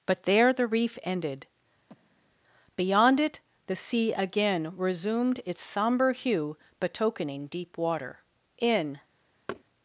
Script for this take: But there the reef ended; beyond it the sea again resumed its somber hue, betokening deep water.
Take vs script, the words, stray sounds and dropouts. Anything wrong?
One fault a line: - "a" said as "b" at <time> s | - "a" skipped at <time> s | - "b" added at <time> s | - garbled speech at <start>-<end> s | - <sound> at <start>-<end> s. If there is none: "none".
- breath at 1.9-2.4 s
- "In" added at 8.6 s
- thud at 9.5-9.6 s